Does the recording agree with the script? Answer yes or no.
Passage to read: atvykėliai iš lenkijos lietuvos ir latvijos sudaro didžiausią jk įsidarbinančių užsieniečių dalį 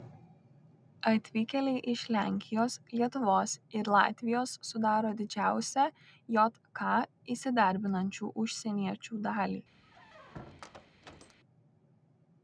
yes